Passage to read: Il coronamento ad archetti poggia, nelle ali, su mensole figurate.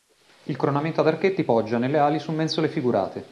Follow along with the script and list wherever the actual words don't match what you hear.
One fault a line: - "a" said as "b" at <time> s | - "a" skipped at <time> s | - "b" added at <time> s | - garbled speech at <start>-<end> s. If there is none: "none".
none